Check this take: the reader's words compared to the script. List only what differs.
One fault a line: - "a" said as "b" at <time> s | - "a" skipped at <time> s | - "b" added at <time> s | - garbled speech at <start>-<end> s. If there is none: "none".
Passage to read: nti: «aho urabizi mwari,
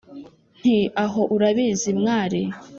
none